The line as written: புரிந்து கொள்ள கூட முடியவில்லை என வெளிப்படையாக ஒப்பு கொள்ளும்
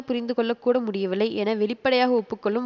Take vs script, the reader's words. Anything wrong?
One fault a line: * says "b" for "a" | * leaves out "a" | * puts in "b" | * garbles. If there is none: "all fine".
all fine